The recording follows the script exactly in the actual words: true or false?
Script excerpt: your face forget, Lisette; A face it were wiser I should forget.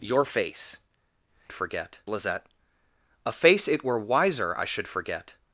true